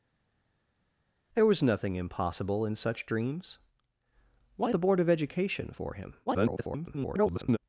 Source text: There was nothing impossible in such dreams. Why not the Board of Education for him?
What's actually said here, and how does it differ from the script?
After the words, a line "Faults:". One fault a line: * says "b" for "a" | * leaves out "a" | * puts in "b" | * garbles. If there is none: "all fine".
There was nothing impossible in such dreams. Why the Board of Education for him? [garbled]
Faults:
* leaves out "not"
* garbles